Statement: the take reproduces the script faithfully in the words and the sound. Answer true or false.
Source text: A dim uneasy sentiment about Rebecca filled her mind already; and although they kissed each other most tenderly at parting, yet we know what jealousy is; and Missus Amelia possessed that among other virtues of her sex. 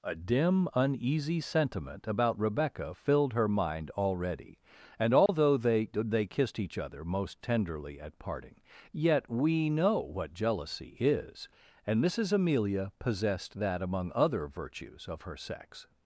false